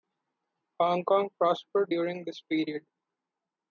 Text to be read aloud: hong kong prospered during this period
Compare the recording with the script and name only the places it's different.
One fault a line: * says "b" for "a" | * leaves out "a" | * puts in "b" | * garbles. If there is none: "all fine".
all fine